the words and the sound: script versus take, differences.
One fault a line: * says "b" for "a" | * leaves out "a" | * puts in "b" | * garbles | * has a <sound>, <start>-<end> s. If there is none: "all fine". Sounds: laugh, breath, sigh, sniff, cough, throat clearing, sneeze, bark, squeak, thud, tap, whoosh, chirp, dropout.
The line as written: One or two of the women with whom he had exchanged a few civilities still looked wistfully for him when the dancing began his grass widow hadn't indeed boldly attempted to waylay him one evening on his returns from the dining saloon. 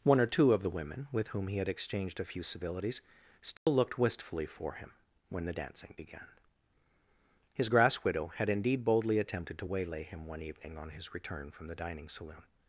* has a dropout, 3.6-3.7 s
* says "had" for "hadn't"
* says "return" for "returns"